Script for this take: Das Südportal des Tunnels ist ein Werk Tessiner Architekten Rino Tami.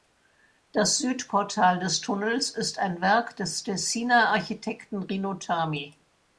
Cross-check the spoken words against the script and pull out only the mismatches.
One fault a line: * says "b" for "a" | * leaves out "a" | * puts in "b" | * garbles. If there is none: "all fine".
* puts in "des"